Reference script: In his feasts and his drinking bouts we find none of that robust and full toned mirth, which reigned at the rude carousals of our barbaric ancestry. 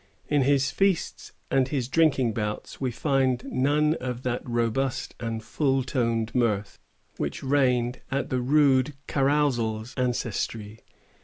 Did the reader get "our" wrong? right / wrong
wrong